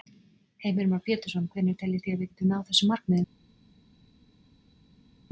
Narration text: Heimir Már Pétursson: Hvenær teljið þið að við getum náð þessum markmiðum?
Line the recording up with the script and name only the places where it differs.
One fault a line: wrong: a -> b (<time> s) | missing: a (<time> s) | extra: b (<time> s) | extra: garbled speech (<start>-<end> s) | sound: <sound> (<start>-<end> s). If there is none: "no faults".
no faults